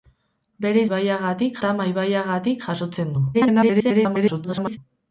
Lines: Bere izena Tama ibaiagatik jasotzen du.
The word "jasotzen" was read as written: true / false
true